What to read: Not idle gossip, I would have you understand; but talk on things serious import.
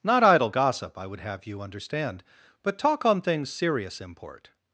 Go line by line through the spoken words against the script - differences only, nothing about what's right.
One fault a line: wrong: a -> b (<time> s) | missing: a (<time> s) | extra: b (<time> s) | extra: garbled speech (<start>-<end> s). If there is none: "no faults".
no faults